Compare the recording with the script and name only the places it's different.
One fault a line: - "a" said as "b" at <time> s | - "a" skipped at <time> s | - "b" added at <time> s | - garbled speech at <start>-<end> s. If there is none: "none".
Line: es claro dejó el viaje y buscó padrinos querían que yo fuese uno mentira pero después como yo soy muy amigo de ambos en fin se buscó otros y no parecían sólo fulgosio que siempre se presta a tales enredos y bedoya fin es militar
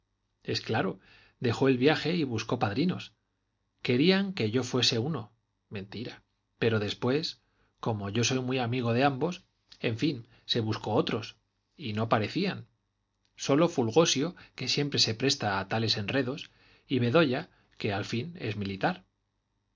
- "que al" added at 17.8 s